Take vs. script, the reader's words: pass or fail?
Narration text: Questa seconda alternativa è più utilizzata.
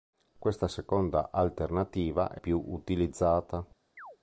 pass